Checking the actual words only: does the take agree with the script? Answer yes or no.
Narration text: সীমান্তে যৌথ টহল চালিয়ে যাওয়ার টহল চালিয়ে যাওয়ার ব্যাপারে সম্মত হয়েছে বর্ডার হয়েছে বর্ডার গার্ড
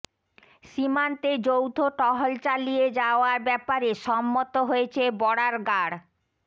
no